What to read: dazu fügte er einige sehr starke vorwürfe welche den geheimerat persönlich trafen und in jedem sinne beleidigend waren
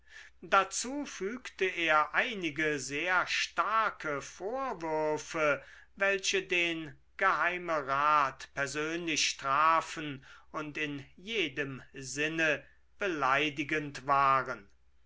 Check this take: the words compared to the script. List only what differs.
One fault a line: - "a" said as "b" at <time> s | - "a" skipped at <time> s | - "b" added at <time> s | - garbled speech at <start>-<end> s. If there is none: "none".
none